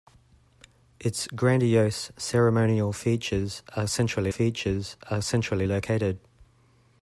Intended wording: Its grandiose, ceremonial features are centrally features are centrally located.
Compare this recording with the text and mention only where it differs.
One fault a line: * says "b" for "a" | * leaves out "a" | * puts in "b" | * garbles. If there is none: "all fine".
all fine